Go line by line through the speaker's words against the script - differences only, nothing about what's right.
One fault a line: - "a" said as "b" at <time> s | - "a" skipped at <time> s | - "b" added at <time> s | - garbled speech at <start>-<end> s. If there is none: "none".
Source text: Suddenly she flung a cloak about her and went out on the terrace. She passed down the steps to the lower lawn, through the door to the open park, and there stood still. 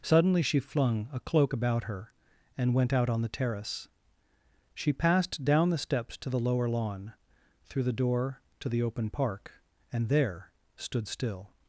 none